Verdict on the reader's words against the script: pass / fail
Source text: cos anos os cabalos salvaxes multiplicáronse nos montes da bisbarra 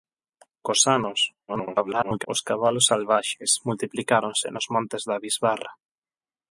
fail